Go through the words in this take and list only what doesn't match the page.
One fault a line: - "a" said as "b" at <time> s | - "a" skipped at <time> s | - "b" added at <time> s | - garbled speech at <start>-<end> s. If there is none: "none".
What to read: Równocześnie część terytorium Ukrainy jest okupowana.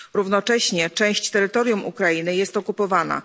none